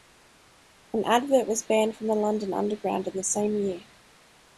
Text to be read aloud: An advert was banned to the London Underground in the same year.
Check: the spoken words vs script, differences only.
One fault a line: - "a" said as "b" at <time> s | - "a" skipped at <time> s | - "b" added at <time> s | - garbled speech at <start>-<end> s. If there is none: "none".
- "to" said as "from" at 1.9 s